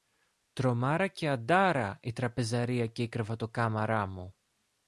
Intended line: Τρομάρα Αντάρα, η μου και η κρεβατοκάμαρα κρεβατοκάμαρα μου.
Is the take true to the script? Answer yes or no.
no